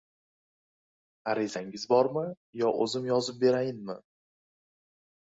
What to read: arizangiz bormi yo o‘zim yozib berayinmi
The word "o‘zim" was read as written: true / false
true